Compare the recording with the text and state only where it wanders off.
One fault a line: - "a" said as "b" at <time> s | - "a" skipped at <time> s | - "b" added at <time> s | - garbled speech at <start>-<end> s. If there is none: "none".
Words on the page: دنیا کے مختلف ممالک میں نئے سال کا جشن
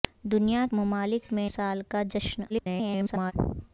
- "کے مختلف" skipped at 0.7 s
- "نئے" skipped at 1.5 s
- garbled speech at 2.5-3.3 s